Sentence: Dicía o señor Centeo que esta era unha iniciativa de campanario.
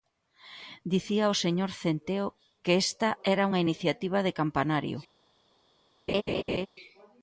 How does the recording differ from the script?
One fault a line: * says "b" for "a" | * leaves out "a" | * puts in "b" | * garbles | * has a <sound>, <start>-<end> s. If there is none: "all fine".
* has a laugh, 6.1-6.7 s